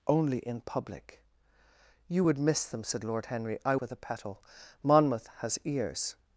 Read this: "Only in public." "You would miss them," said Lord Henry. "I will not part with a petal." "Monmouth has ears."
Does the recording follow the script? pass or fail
fail